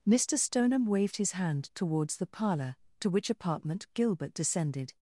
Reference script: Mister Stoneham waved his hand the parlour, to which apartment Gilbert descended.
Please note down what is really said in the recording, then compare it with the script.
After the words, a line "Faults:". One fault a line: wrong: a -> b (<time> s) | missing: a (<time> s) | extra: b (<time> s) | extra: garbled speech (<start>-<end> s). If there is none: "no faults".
Mister Stoneham waved his hand towards the parlour, to which apartment Gilbert descended.
Faults:
extra: towards (1.8 s)